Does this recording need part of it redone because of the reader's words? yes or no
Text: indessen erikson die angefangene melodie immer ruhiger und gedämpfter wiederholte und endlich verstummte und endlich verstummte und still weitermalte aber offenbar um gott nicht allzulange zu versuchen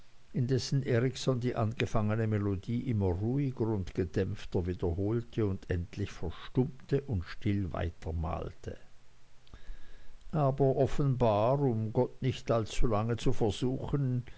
yes